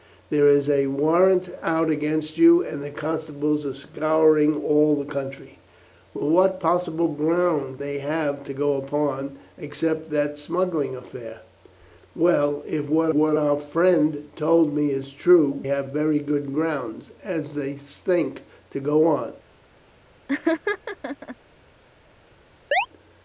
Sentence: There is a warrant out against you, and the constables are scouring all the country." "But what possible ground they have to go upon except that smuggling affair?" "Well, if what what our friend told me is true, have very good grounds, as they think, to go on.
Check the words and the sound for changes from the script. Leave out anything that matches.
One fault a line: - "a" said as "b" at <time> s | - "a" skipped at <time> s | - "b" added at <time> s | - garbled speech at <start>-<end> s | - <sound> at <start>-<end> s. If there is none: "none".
- laugh at 20.3-21.4 s
- chirp at 22.7-22.9 s